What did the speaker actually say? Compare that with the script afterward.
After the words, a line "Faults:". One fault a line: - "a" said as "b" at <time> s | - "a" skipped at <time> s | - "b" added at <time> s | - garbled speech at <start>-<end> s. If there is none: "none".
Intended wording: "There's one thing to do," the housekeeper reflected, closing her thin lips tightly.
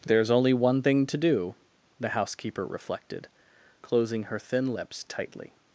"There's only one thing to do," the housekeeper reflected, closing her thin lips tightly.
Faults:
- "only" added at 0.3 s